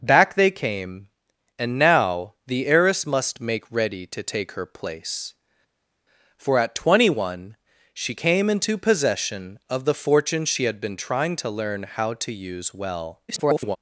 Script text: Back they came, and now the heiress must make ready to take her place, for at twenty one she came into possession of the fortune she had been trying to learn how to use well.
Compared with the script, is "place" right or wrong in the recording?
right